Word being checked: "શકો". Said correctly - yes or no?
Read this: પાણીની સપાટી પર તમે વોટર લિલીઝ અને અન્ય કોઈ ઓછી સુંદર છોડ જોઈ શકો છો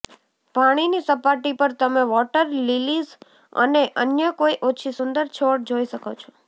yes